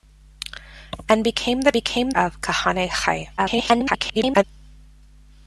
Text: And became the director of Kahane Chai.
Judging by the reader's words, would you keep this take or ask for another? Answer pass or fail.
fail